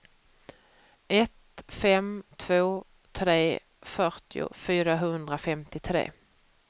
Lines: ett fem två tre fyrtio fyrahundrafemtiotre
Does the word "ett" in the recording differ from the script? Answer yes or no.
no